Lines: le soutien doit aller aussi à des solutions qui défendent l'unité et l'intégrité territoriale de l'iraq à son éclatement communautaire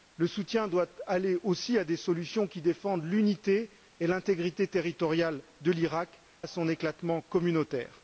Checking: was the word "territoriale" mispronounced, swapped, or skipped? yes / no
no